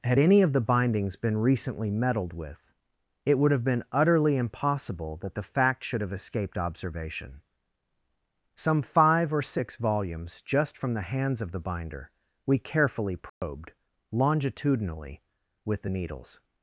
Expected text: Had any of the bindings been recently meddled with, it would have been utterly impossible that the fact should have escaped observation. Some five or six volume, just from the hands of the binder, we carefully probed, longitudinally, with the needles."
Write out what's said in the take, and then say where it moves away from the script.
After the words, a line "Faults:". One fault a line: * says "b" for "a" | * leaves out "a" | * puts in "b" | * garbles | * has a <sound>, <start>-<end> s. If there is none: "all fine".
Had any of the bindings been recently meddled with, it would have been utterly impossible that the fact should have escaped observation. Some five or six volumes, just from the hands of the binder, we carefully probed, longitudinally, with the needles."
Faults:
* says "volumes" for "volume"
* has a dropout, 13.3-13.4 s